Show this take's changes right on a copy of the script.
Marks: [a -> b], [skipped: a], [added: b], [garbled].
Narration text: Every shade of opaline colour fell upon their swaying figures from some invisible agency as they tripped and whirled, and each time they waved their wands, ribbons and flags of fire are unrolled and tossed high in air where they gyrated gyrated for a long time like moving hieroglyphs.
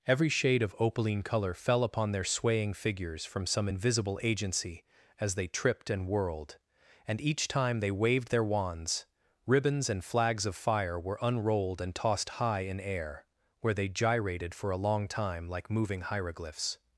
Every shade of opaline colour fell upon their swaying figures from some invisible agency as they tripped and whirled, and each time they waved their wands, ribbons and flags of fire [are -> were] unrolled and tossed high in air where they gyrated [skipped: gyrated] for a long time like moving hieroglyphs.